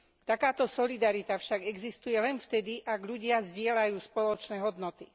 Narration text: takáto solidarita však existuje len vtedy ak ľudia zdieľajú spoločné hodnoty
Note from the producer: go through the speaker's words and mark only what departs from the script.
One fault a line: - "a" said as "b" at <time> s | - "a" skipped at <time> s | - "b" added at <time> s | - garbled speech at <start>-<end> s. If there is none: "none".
none